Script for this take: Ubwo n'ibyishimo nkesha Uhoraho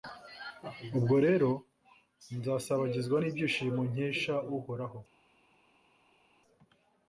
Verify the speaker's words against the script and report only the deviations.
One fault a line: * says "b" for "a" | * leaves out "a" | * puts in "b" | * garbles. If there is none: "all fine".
* puts in "rero nzasabagizwa"